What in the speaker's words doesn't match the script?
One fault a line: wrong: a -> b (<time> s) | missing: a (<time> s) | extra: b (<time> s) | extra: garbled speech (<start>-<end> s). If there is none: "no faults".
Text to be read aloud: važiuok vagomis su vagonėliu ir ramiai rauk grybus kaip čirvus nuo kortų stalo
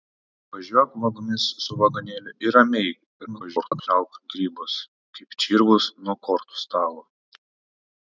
extra: garbled speech (3.3-3.9 s)